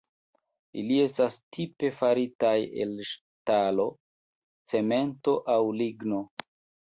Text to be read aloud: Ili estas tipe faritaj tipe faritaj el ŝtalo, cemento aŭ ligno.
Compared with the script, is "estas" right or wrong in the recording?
right